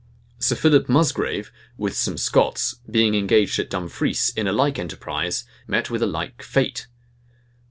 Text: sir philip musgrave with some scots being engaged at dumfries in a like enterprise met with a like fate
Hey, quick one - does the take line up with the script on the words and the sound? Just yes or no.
yes